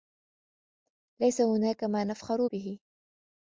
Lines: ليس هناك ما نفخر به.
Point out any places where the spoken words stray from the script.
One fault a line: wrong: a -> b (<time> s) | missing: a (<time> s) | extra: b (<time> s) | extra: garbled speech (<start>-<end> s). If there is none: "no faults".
no faults